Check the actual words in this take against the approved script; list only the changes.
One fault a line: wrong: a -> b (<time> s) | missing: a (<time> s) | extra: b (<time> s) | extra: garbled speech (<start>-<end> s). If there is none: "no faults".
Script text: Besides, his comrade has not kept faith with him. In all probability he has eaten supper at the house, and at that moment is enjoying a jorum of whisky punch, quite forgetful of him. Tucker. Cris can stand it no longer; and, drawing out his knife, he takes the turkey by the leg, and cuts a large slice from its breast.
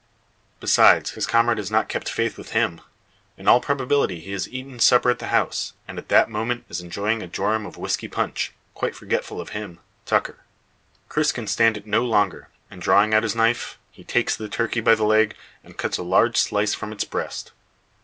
no faults